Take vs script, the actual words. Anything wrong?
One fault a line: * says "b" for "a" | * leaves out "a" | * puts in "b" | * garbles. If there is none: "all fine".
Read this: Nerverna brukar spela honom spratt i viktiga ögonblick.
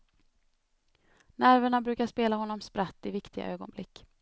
all fine